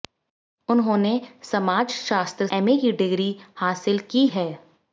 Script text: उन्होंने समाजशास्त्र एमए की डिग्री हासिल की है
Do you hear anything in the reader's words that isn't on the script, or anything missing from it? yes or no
no